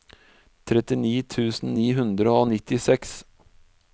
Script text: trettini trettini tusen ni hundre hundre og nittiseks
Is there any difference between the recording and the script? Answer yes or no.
yes